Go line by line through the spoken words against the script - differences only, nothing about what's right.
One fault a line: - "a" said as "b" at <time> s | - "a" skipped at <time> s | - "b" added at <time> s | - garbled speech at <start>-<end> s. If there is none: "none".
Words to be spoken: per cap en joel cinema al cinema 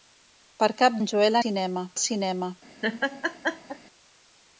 none